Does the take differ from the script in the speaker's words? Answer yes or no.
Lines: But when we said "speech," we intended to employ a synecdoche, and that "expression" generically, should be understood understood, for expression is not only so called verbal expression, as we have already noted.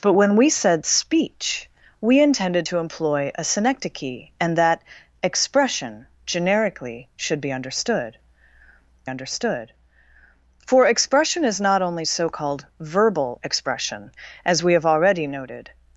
no